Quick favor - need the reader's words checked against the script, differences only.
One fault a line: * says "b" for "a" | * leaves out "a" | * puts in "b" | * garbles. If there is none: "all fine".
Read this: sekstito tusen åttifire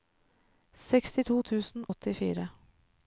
all fine